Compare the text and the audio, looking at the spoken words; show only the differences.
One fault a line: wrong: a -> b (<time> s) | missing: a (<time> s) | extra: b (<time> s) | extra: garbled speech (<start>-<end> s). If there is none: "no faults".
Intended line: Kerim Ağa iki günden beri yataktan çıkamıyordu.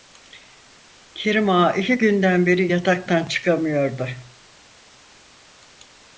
no faults